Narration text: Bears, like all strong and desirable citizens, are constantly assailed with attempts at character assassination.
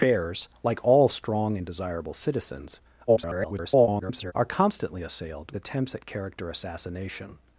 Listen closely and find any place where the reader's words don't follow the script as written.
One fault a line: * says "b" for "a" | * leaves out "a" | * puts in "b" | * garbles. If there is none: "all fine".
* garbles
* leaves out "with"